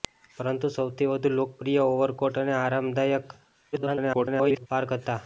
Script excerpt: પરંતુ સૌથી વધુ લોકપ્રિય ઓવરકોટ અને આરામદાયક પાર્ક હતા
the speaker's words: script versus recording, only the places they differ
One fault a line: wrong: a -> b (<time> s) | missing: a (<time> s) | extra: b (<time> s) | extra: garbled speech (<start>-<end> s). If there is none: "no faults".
extra: garbled speech (3.7-4.7 s)